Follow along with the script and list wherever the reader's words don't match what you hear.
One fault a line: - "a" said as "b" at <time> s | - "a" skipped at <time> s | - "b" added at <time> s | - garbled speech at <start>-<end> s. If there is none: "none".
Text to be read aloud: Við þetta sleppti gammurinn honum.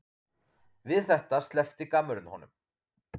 none